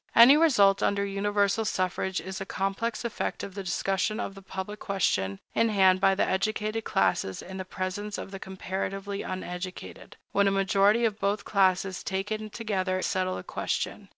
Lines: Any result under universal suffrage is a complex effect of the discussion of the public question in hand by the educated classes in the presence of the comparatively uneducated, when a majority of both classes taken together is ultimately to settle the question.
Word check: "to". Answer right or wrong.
wrong